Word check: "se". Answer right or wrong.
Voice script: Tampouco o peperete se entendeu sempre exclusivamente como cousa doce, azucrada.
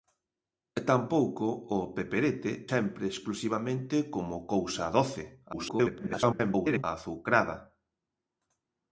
wrong